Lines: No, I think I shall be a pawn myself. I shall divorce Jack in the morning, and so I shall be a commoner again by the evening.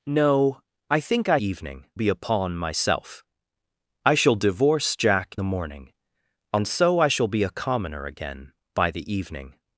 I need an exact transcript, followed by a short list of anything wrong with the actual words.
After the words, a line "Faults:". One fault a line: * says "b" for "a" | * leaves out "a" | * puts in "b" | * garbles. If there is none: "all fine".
No, I think I evening be a pawn myself. I shall divorce Jack the morning, and so I shall be a commoner again by the evening.
Faults:
* says "evening" for "shall"
* leaves out "in"